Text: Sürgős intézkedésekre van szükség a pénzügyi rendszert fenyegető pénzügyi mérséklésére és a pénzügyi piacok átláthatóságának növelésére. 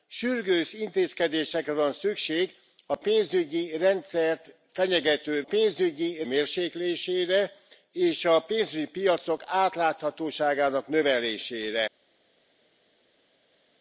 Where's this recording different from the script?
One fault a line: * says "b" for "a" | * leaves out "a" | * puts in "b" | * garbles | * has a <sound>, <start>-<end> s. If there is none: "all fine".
all fine